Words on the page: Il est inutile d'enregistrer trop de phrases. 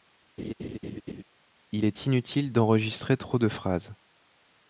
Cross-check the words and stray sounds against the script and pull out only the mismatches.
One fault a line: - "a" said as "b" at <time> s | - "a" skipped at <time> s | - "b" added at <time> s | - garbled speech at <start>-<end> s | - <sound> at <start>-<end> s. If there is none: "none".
- laugh at 0.4-1.2 s